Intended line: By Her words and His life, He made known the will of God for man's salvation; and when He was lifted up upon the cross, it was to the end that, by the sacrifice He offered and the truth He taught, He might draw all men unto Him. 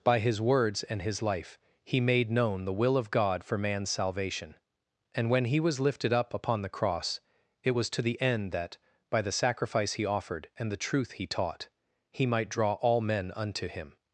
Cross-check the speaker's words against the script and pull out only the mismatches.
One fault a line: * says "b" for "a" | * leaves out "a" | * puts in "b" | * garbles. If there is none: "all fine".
* says "His" for "Her"